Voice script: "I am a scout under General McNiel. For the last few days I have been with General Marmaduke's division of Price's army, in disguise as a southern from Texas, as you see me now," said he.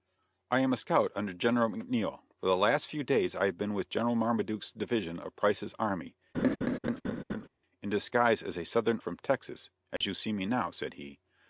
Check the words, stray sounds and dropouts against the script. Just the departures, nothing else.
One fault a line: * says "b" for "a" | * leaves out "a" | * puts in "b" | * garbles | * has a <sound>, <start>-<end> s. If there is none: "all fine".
* has a laugh, 6.3-7.5 s
* has a dropout, 10.0-10.0 s